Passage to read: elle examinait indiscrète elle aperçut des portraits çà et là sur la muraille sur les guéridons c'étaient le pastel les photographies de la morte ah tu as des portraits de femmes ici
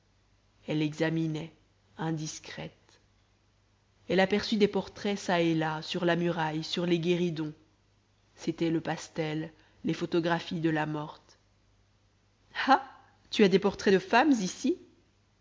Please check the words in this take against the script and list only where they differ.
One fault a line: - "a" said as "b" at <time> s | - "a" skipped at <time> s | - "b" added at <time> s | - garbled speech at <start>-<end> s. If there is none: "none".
none